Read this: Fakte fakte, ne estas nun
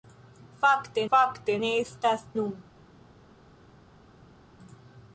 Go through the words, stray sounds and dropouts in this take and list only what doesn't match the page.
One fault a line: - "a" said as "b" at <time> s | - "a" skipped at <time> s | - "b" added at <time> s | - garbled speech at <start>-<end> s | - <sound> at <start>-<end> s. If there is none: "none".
none